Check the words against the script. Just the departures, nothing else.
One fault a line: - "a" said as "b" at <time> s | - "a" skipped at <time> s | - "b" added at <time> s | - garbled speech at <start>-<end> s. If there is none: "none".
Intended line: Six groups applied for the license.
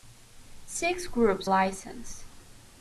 - "applied for the" skipped at 1.5 s